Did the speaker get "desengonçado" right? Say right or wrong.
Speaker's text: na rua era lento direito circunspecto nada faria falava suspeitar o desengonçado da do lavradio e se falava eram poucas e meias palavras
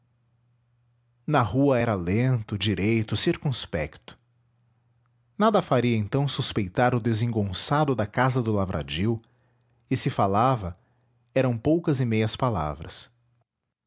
right